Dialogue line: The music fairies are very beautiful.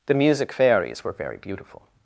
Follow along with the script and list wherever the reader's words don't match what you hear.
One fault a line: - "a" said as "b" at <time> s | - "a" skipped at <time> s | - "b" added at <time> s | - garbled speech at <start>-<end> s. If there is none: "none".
- "are" said as "were" at 1.0 s